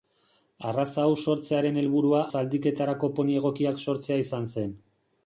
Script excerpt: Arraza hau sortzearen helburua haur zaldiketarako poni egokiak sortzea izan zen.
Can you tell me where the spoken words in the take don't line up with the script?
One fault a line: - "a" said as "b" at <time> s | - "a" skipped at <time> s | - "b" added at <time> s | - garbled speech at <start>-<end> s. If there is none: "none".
- "haur" skipped at 2.2 s